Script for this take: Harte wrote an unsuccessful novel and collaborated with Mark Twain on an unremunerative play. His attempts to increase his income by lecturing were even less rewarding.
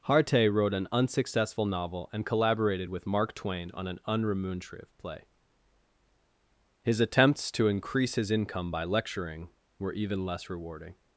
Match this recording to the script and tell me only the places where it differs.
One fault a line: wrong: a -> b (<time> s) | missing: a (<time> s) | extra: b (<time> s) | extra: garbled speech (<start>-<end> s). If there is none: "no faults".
no faults